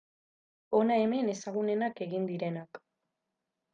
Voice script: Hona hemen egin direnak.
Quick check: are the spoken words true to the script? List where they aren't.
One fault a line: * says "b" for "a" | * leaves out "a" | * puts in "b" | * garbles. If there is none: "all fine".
* puts in "ezagunenak"